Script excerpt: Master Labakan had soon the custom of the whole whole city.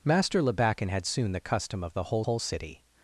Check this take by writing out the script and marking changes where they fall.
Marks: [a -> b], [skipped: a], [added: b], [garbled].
Master Labakan had soon the custom of the whole whole city.